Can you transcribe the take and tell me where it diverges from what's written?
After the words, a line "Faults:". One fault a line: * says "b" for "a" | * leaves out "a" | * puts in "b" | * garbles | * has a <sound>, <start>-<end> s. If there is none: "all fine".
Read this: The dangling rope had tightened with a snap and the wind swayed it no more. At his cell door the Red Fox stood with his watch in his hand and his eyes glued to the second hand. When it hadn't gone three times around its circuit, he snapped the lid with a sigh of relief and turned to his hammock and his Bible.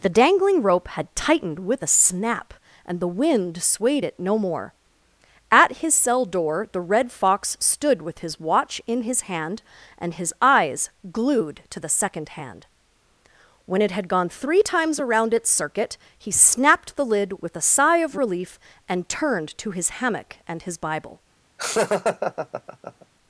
The dangling rope had tightened with a snap and the wind swayed it no more. At his cell door the Red Fox stood with his watch in his hand and his eyes glued to the second hand. When it had gone three times around its circuit, he snapped the lid with a sigh of relief and turned to his hammock and his Bible.
Faults:
* says "had" for "hadn't"
* has a laugh, 21.6-23.1 s